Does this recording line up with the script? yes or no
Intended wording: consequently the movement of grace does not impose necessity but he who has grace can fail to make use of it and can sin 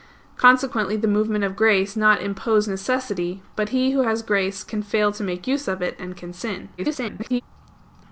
no